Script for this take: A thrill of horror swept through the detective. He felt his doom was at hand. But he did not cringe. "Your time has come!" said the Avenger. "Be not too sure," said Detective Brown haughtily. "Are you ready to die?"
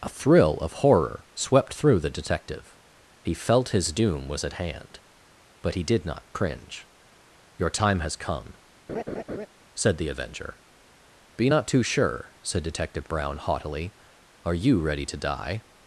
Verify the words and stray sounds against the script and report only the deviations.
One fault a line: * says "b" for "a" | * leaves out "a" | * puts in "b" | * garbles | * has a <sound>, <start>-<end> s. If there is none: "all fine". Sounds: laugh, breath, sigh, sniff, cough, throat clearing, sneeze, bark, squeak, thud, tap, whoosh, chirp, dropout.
* has a laugh, 8.9-9.5 s